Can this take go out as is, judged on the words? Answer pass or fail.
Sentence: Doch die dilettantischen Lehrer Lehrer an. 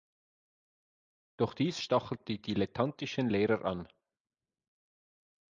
fail